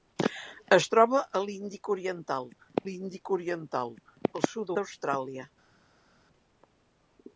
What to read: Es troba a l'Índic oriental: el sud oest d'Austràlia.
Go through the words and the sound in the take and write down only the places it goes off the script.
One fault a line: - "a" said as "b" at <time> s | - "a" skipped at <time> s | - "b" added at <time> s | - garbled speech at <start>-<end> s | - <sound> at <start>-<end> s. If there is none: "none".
- "l'Índic oriental" added at 2.9 s
- "oest" skipped at 4.8 s